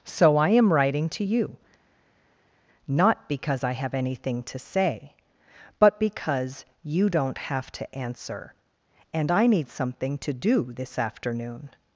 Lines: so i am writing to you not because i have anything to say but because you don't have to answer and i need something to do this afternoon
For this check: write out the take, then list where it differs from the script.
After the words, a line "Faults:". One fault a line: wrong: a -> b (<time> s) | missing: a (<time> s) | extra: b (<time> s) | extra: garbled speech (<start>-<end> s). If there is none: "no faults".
so i am writing to you not because i have anything to say but because you don't have to answer and i need something to do this afternoon
Faults:
no faults